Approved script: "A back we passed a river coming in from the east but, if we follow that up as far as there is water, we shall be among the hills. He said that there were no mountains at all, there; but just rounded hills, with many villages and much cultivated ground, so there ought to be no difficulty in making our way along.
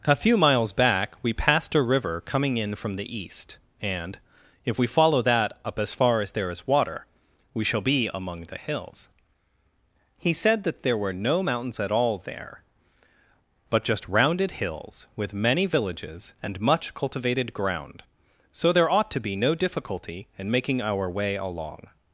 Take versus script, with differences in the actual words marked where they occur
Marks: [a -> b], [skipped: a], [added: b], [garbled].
"A [added: few miles] back we passed a river coming in from the east [but, -> and] if we follow that up as far as there is water, we shall be among the hills. He said that there were no mountains at all, there; but just rounded hills, with many villages and much cultivated ground, so there ought to be no difficulty in making our way along.